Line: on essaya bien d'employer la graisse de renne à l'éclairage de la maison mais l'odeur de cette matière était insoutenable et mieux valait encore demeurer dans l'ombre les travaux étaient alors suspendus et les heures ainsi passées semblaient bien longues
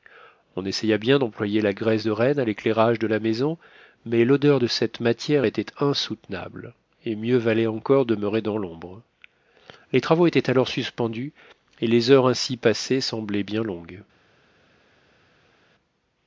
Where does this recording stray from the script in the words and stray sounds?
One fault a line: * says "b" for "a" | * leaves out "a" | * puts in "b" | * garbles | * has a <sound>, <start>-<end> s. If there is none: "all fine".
all fine